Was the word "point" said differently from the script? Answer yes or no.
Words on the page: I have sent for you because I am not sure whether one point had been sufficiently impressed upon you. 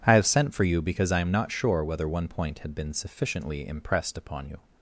no